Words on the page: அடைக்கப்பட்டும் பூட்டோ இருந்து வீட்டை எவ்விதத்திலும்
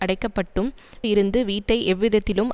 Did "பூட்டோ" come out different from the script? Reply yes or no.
yes